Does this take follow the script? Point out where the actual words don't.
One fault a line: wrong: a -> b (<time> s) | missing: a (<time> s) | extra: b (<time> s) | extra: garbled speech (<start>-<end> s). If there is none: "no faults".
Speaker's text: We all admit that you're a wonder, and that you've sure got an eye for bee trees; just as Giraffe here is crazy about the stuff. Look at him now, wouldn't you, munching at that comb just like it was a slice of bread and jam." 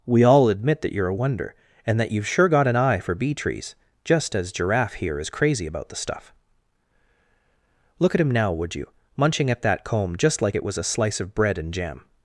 wrong: wouldn't -> would (8.5 s)